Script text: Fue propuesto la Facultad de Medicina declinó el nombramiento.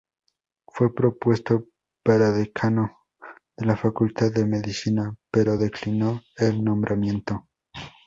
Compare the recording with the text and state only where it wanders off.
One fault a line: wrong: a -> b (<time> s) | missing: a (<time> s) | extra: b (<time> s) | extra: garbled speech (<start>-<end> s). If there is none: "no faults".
extra: para decano de (2.0 s)
extra: pero (5.3 s)